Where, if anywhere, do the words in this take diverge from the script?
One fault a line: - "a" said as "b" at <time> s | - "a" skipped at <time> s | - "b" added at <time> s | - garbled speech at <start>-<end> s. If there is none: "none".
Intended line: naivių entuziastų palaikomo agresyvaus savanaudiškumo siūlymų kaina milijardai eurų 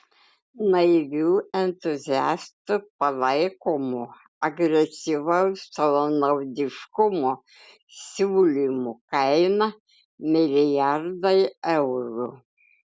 none